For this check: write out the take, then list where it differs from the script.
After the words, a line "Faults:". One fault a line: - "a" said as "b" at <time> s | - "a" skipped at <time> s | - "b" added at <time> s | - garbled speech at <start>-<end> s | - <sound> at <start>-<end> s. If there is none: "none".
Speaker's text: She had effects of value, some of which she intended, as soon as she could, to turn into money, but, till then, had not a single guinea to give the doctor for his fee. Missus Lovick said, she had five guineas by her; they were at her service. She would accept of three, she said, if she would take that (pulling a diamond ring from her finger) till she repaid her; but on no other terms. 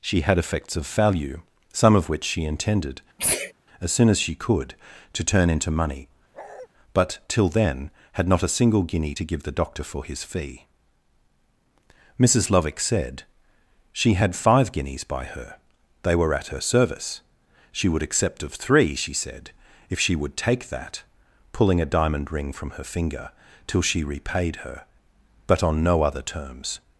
She had effects of value, some of which she intended, as soon as she could, to turn into money, but, till then, had not a single guinea to give the doctor for his fee. Missus Lovick said, she had five guineas by her; they were at her service. She would accept of three, she said, if she would take that (pulling a diamond ring from her finger) till she repaid her; but on no other terms.
Faults:
- sneeze at 3.2-3.5 s
- bark at 6.3-6.7 s